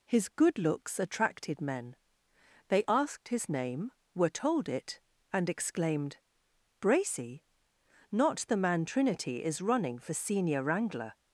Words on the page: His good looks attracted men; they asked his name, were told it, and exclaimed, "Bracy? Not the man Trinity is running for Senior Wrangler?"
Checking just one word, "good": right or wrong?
right